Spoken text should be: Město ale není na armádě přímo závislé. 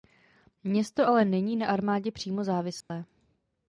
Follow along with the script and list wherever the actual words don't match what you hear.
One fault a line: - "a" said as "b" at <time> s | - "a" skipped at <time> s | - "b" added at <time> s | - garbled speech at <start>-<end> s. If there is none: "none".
none